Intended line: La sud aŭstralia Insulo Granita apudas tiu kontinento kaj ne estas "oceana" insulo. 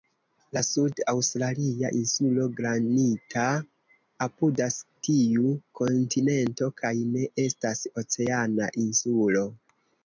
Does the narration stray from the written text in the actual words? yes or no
no